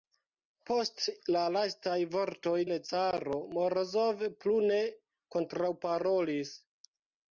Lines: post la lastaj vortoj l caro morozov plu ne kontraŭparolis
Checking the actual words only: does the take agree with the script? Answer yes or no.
yes